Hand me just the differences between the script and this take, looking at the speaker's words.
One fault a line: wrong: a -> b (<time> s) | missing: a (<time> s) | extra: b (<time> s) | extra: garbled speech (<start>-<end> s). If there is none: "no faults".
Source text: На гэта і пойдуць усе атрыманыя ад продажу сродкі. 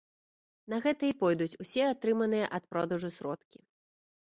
no faults